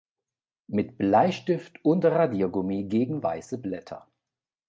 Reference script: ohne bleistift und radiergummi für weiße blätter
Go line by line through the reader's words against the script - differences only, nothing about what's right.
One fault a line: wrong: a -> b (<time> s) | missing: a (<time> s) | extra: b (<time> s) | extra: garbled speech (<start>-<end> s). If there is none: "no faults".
wrong: ohne -> mit (0.7 s)
wrong: für -> gegen (2.9 s)